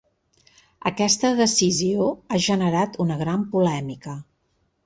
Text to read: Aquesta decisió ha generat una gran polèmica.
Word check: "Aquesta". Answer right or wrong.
right